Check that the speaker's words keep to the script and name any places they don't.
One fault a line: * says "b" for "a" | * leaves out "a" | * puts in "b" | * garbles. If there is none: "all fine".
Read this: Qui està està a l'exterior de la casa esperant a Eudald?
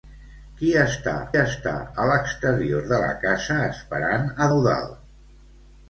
all fine